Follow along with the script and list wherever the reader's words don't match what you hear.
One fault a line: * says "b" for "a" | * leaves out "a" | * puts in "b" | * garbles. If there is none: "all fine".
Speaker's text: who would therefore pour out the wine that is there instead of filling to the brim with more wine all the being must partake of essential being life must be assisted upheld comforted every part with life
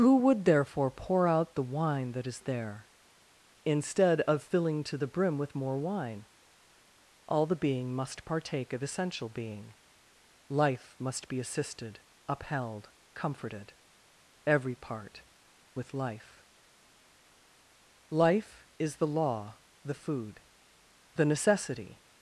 * puts in "life is the law the food the necessity"